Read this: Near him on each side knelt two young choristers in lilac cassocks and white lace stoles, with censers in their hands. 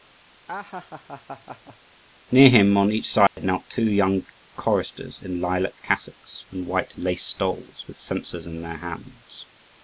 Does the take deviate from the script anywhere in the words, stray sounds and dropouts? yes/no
yes